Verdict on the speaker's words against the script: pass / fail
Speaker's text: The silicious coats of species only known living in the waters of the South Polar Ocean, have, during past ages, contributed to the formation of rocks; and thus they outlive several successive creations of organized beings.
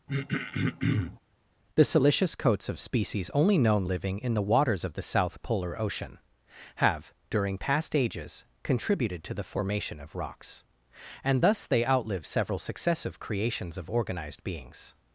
pass